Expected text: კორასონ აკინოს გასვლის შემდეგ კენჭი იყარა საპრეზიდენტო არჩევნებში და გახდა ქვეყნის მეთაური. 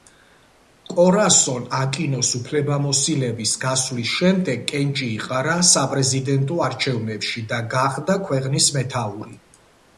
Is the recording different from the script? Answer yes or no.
yes